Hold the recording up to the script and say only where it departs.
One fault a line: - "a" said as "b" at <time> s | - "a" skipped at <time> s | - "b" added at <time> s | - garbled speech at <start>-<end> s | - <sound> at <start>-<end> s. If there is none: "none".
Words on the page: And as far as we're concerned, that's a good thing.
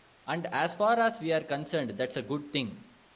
none